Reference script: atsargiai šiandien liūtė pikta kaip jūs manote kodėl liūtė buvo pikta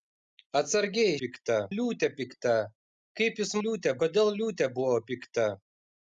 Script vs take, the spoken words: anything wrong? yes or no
yes